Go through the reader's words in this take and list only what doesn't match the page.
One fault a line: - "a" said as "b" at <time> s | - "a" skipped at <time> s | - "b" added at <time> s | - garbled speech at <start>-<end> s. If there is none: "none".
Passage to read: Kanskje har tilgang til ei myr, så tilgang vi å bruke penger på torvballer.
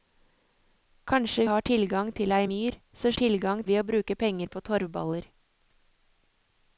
none